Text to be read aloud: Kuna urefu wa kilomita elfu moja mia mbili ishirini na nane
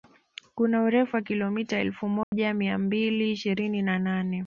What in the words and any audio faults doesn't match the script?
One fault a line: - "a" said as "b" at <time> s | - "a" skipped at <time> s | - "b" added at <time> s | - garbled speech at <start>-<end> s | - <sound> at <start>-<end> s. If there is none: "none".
- dropout at 2.2-2.3 s